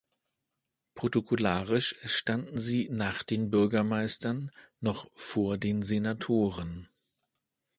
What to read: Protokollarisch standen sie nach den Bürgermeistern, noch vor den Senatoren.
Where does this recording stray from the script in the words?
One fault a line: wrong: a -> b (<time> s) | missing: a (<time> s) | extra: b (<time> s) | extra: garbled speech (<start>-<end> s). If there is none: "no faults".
no faults